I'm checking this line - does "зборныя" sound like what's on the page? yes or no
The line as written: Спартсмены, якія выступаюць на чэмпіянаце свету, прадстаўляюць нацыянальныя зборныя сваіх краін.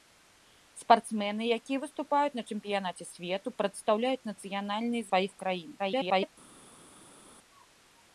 no